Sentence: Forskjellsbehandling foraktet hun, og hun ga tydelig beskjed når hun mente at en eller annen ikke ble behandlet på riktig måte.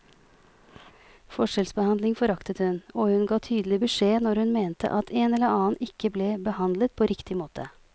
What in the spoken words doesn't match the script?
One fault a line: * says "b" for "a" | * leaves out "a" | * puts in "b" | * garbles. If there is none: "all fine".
all fine